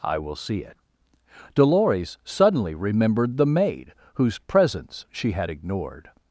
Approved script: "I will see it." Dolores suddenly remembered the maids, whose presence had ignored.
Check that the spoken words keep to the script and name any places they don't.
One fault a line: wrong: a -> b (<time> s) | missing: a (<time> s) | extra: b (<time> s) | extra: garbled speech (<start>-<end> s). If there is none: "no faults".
wrong: maids -> maid (3.4 s)
extra: she (5.1 s)